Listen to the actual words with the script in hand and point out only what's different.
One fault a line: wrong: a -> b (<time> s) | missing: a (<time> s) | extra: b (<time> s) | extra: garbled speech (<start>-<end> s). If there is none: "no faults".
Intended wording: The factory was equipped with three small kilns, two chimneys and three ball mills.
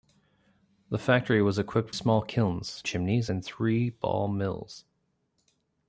missing: with three (1.9 s)
missing: two (2.8 s)